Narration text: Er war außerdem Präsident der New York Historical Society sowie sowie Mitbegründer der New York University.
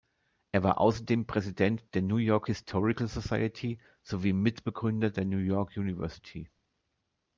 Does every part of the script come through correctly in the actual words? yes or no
no